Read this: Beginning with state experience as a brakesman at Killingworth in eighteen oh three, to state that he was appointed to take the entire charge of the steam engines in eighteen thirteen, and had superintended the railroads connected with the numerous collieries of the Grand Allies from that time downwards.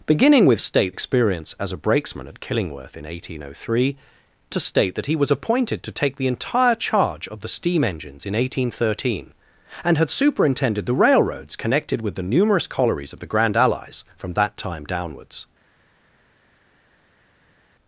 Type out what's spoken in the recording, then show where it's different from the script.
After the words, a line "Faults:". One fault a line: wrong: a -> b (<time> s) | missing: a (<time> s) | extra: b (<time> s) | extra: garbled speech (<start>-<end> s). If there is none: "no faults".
Beginning with state experience as a brakesman at Killingworth in eighteen oh three, to state that he was appointed to take the entire charge of the steam engines in eighteen thirteen, and had superintended the railroads connected with the numerous collieries of the Grand Allies from that time downwards.
Faults:
no faults